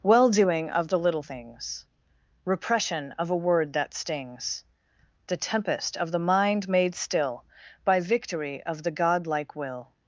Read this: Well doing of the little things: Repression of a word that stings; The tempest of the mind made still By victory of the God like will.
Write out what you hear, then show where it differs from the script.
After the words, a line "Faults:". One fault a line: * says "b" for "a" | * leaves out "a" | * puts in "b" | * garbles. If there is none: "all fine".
Well doing of the little things: Repression of a word that stings; The tempest of the mind made still By victory of the God like will.
Faults:
all fine